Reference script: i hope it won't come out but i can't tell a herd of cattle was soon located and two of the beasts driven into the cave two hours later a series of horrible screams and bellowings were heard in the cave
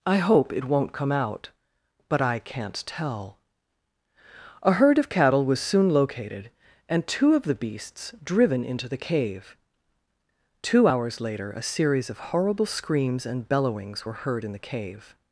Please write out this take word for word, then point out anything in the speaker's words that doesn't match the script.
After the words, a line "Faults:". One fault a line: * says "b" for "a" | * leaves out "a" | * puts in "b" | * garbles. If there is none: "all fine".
i hope it won't come out but i can't tell a herd of cattle was soon located and two of the beasts driven into the cave two hours later a series of horrible screams and bellowings were heard in the cave
Faults:
all fine